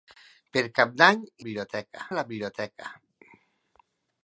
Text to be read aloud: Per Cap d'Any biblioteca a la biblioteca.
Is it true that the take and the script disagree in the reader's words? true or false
false